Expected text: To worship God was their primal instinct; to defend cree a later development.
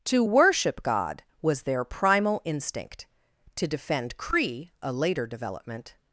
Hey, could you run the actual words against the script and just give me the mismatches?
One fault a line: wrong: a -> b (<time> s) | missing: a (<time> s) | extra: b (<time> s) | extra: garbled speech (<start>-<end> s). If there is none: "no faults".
no faults